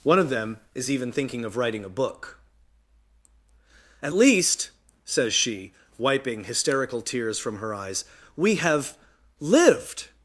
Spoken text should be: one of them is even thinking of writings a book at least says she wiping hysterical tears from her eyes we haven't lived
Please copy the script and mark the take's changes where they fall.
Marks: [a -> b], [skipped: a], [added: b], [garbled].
one of them is even thinking of [writings -> writing] a book at least says she wiping hysterical tears from her eyes we [haven't -> have] lived